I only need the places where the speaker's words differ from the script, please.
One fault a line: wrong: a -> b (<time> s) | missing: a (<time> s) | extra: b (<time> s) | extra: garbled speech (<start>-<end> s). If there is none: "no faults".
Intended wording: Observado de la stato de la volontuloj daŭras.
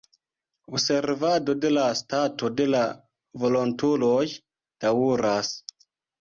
no faults